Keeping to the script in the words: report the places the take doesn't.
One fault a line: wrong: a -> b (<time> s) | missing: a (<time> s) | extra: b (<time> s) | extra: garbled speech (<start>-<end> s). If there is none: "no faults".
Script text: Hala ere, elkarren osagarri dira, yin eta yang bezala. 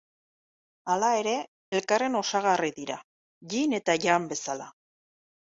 no faults